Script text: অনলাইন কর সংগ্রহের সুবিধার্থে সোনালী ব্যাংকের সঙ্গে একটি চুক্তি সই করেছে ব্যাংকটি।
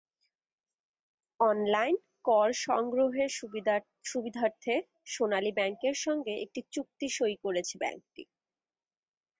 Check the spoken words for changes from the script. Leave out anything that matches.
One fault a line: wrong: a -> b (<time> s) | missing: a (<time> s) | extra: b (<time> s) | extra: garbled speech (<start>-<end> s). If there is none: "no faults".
no faults